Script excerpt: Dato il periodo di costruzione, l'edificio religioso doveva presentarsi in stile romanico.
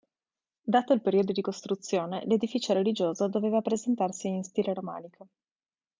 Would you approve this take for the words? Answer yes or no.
yes